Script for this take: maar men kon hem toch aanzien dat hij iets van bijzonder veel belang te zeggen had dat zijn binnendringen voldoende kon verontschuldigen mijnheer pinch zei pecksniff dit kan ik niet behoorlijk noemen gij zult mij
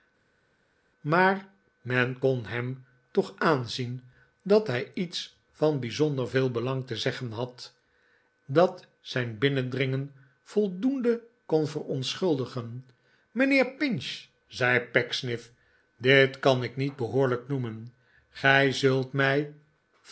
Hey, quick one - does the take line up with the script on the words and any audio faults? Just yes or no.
yes